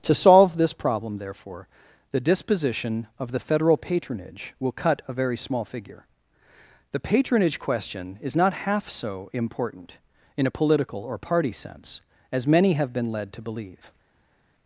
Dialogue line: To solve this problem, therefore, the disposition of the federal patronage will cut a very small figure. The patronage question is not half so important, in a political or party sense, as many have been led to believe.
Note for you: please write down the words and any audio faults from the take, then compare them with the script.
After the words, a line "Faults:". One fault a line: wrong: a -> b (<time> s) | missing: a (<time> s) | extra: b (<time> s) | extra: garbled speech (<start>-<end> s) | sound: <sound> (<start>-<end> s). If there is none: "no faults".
To solve this problem, therefore, the disposition of the federal patronage will cut a very small figure. The patronage question is not half so important, in a political or party sense, as many have been led to believe.
Faults:
no faults